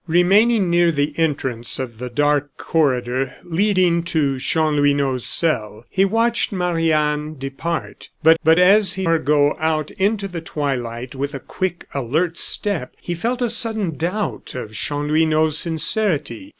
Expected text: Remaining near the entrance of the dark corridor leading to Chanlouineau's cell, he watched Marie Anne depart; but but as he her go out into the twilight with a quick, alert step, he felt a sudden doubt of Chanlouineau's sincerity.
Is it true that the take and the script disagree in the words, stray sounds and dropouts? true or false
false